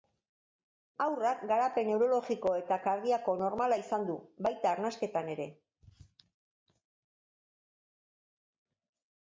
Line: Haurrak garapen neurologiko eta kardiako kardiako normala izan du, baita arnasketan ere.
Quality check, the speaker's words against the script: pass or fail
fail